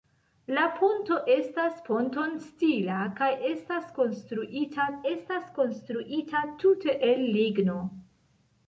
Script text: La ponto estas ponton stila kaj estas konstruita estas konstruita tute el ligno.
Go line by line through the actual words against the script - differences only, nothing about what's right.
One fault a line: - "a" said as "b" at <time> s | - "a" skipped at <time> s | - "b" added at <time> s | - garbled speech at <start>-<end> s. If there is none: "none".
none